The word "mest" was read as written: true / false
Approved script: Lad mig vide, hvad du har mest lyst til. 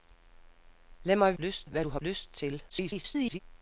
false